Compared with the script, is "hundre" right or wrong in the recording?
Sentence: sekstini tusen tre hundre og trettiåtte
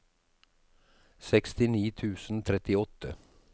wrong